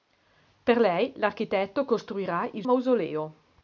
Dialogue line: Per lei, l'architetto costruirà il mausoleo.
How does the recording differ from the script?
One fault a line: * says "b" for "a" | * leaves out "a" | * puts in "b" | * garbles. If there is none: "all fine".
all fine